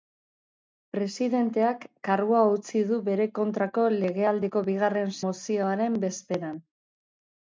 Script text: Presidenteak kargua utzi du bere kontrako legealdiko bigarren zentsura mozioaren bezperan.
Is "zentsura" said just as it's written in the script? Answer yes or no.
no